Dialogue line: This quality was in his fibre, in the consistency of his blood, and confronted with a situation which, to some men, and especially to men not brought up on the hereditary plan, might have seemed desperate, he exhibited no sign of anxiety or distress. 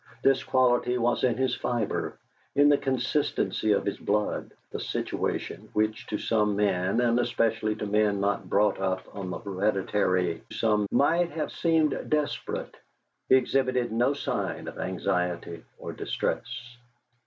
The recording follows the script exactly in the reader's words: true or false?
false